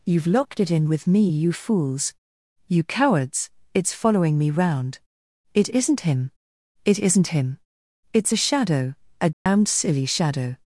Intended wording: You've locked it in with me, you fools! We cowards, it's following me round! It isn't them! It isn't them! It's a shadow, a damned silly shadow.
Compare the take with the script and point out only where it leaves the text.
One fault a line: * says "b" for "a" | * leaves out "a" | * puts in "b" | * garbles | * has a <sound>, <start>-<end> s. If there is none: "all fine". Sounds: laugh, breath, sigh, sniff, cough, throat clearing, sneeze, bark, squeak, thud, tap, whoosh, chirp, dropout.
* says "You" for "We"
* says "him" for "them"
* says "him" for "them"
* has a dropout, 9.3-9.5 s